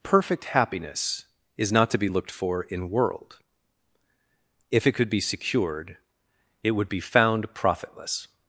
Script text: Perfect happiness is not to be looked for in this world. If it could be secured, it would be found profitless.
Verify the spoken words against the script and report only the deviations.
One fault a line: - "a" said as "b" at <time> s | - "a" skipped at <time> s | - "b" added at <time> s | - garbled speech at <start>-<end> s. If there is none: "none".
- "this" skipped at 2.9 s